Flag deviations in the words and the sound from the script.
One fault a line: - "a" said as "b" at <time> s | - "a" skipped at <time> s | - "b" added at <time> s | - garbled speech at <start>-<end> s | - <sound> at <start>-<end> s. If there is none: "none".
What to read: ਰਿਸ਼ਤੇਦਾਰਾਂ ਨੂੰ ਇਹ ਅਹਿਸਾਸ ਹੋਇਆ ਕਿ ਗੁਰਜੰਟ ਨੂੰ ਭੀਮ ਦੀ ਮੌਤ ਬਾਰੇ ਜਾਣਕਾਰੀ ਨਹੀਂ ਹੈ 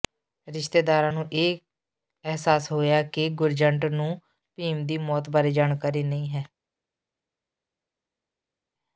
none